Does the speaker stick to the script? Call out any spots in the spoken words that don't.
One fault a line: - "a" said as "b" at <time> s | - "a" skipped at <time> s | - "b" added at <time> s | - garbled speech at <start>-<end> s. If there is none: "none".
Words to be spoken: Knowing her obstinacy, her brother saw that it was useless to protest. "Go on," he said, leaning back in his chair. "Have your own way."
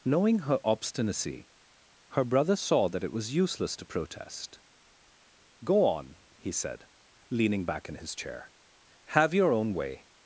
none